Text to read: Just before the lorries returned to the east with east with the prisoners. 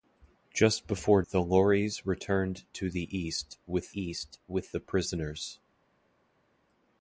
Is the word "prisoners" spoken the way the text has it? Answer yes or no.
yes